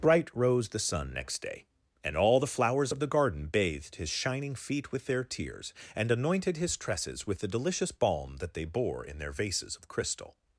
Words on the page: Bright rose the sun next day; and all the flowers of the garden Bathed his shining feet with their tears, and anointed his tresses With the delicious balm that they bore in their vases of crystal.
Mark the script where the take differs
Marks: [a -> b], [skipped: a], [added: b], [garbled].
Bright rose the sun next day; and all the flowers of the garden Bathed his shining feet with their tears, and anointed his tresses With the delicious balm that they bore in their vases of crystal.